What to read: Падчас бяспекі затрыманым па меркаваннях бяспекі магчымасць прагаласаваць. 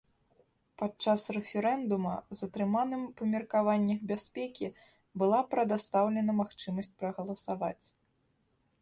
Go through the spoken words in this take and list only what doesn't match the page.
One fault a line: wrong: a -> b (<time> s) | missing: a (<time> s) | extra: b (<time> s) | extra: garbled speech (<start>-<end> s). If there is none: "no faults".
wrong: бяспекі -> рэферэндума (1.4 s)
extra: была прадастаўлена (5.2 s)